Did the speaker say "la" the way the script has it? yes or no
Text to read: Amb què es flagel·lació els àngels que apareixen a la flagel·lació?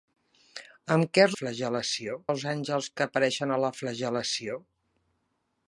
yes